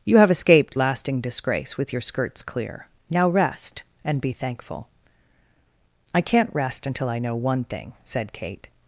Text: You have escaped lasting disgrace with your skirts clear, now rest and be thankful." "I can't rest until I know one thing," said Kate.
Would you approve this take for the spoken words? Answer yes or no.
yes